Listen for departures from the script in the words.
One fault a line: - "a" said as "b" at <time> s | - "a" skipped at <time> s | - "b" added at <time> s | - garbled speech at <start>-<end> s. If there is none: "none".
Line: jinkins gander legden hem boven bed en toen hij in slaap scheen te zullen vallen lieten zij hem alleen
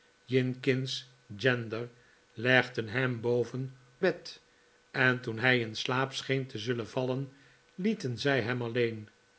none